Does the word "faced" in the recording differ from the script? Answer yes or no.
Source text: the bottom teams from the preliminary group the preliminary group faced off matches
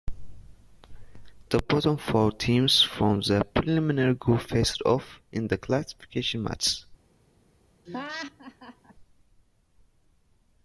yes